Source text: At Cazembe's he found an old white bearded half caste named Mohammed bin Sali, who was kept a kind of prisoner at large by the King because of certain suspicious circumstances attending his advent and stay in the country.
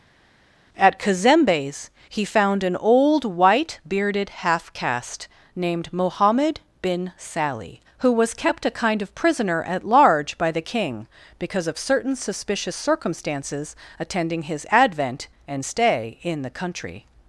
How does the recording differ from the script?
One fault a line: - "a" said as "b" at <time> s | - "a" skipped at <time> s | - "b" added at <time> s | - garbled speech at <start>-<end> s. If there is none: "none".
none